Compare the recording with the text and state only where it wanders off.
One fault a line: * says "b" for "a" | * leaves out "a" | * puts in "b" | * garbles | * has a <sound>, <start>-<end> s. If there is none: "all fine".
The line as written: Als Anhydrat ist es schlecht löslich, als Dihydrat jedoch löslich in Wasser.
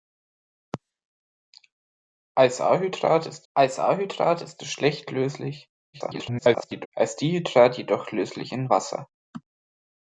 * puts in "als Anhydrat ist"
* garbles